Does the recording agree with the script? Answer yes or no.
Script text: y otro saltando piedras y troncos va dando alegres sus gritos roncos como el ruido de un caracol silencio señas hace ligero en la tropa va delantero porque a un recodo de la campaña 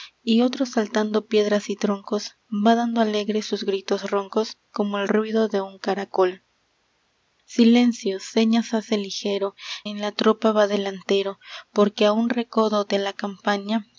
yes